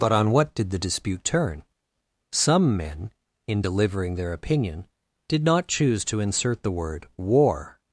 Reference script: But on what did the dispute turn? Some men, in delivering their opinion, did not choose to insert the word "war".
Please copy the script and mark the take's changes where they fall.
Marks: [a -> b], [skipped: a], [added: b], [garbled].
But on what did the dispute turn? Some men, in delivering their opinion, did not choose to insert the word "war".